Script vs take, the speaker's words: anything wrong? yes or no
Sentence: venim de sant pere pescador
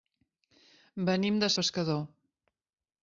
yes